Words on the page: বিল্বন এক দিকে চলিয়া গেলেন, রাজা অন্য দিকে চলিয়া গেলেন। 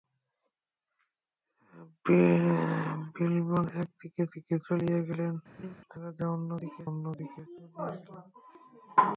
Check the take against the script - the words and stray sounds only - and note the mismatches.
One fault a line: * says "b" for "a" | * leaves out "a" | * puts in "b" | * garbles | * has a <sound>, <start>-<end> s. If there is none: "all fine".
* puts in "দিকে"
* has a laugh, 5.6-5.7 s
* puts in "অন্য দিকে"